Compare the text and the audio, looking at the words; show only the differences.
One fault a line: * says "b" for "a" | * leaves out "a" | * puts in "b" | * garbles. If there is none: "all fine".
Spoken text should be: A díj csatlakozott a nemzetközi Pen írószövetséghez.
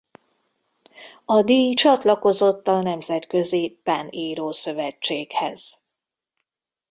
all fine